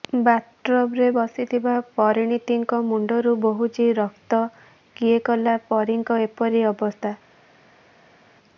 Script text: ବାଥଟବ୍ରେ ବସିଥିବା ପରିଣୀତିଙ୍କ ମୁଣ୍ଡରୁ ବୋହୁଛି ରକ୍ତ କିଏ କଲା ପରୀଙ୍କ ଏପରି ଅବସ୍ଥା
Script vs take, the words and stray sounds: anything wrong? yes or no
no